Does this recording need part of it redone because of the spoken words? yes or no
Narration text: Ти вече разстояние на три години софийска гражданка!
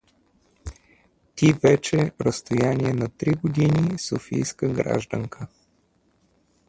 no